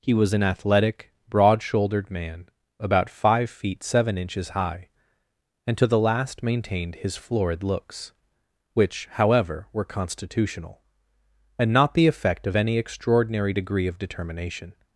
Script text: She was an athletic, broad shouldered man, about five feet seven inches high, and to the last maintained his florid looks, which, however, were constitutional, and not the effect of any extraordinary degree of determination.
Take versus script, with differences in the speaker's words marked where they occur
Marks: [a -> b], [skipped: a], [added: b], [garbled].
[She -> He] was an athletic, broad shouldered man, about five feet seven inches high, and to the last maintained his florid looks, which, however, were constitutional, and not the effect of any extraordinary degree of determination.